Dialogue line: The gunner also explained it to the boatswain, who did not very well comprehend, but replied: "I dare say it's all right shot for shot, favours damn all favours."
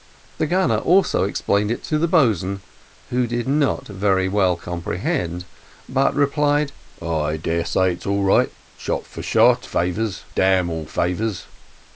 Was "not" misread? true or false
false